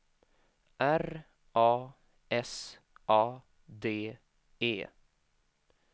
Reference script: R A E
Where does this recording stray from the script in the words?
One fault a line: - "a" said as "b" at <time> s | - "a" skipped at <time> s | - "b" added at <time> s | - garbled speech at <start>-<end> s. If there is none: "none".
- "S A D" added at 2.3 s